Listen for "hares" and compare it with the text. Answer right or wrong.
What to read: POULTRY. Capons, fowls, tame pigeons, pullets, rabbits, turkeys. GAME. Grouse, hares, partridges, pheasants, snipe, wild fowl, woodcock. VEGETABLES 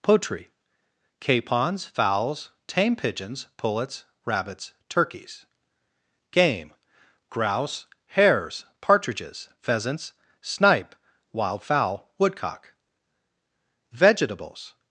right